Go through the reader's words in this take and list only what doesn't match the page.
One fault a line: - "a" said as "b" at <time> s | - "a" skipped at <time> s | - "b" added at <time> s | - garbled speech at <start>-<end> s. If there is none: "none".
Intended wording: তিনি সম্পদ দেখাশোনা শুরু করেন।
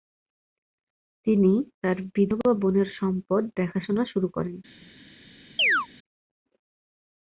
- "তার বিধবা বোনের" added at 1.8 s